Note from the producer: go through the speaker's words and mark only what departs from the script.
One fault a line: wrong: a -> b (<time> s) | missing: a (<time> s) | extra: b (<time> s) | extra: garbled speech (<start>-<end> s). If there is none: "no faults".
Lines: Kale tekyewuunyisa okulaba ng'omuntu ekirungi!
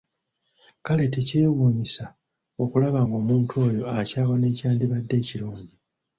extra: oyo akyawa n'ekyandibadde (3.7 s)